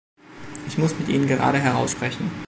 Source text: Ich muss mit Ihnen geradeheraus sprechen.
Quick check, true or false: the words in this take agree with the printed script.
true